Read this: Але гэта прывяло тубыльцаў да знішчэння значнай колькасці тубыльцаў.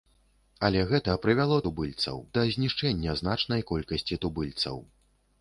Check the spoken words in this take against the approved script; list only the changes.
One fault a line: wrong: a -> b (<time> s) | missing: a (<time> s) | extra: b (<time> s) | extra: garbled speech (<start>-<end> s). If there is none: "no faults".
no faults